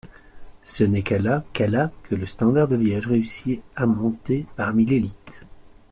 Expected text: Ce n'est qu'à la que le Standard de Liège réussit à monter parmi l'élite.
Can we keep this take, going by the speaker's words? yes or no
no